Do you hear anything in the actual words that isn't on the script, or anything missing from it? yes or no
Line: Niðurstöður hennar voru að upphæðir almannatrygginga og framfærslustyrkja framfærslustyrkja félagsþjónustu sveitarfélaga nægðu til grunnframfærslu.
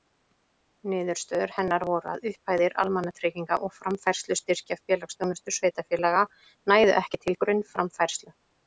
yes